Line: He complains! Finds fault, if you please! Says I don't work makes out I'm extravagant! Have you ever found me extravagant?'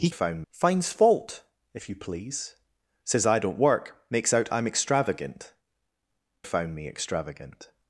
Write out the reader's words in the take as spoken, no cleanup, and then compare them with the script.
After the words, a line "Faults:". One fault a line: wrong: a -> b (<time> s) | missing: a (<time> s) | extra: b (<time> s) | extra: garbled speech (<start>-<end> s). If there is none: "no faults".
He found! Finds fault, if you please! Says I don't work makes out I'm extravagant! Found me extravagant?'
Faults:
wrong: complains -> found (0.1 s)
missing: Have you ever (5.5 s)